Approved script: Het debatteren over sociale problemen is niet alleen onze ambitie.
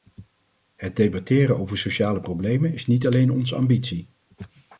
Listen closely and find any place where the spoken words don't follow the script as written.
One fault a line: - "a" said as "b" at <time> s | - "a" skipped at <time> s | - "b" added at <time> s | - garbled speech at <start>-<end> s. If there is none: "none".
none